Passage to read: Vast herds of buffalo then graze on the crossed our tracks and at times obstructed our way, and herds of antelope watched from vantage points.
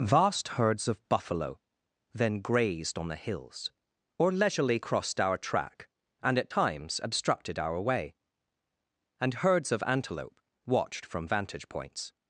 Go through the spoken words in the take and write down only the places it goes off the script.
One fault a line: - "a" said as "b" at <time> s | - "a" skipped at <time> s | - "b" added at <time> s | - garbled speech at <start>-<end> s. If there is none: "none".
- "graze" said as "grazed" at 2.4 s
- "hills or leisurely" added at 3.1 s
- "tracks" said as "track" at 5.4 s